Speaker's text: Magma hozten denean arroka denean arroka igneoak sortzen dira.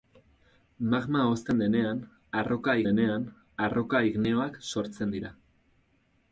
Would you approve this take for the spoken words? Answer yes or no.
yes